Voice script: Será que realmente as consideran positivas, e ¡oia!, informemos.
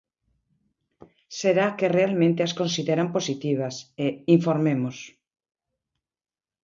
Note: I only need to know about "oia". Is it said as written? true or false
false